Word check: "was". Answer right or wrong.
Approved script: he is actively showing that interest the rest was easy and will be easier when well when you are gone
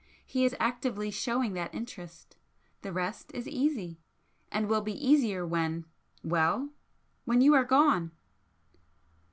wrong